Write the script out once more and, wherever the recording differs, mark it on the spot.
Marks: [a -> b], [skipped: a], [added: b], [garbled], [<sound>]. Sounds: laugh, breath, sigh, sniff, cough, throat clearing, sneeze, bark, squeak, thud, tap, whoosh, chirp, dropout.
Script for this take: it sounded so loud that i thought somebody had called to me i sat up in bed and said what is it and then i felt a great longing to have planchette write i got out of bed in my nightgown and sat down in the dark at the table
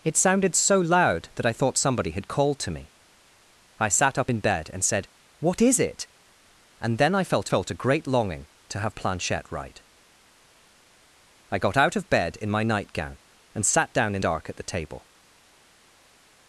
it sounded so loud that i thought somebody had called to me i sat up in bed and said what is it and then i felt [added: felt] a great longing to have planchette write i got out of bed in my nightgown and sat down in [skipped: the] dark at the table